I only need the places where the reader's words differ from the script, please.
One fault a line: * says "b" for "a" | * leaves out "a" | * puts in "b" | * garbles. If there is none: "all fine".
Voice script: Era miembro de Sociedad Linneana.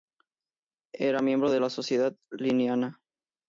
* puts in "la"